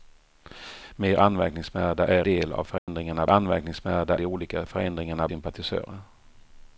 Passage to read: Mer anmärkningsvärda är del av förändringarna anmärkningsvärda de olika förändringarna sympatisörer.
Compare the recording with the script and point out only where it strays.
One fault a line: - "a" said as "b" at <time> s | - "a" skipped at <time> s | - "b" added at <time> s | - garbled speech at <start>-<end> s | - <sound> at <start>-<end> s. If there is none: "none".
- dropout at 2.8-2.9 s